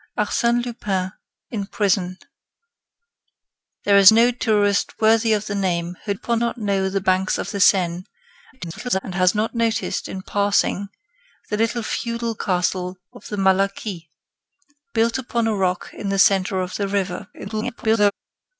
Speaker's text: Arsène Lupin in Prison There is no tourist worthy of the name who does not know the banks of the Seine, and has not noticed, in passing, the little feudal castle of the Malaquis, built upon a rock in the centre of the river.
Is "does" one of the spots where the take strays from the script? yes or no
yes